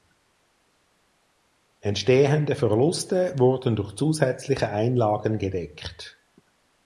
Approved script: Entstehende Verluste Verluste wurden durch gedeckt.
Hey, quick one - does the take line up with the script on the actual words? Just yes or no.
no